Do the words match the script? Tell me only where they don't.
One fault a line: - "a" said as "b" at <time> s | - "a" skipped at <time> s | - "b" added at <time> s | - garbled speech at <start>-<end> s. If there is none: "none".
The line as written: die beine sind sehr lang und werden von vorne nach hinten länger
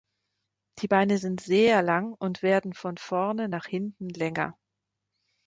none